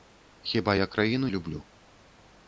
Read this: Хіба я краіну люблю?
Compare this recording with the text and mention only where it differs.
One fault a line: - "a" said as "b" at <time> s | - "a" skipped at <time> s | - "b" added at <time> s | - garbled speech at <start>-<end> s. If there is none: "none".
none